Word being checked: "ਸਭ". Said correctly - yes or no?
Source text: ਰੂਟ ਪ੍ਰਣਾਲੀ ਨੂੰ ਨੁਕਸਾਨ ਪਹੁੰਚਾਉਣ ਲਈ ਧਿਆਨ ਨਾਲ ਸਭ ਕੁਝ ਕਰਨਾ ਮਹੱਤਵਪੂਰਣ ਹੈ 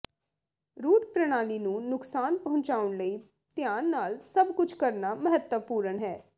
yes